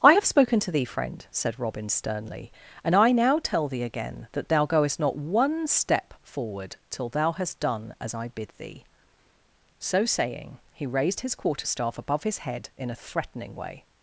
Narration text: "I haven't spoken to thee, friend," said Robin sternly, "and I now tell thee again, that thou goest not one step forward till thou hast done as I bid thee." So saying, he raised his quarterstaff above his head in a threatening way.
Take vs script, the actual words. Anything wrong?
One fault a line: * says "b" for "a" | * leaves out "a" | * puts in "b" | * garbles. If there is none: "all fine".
* says "have" for "haven't"